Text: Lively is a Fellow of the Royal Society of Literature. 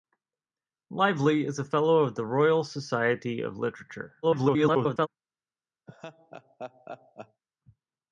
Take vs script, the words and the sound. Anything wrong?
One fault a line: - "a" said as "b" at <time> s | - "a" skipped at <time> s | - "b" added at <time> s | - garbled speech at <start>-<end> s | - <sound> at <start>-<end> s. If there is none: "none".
- garbled speech at 4.2-5.1 s
- laugh at 5.9-7.4 s